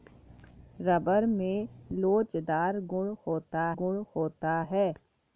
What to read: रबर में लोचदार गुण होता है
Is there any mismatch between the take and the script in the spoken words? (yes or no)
yes